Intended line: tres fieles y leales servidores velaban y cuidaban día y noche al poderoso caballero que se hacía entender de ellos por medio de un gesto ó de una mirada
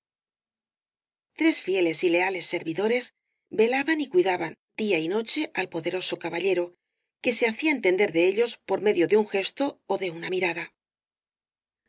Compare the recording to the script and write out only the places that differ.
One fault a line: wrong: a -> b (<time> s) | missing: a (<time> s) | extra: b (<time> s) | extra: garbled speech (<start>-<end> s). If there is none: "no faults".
no faults